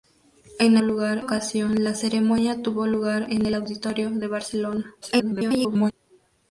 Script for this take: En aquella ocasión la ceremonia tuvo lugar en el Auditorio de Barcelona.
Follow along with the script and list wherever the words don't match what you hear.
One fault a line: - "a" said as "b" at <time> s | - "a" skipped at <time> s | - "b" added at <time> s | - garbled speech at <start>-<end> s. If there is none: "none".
- "aquella" said as "lugar" at 0.8 s
- garbled speech at 5.0-5.9 s